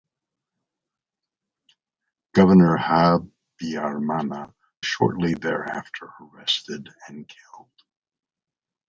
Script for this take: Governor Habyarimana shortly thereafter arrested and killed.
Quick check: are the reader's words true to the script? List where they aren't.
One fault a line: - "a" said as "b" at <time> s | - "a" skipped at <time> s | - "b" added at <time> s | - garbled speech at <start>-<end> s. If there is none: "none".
none